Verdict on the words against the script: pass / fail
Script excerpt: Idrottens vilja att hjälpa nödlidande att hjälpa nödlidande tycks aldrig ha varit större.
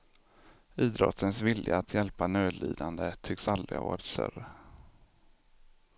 fail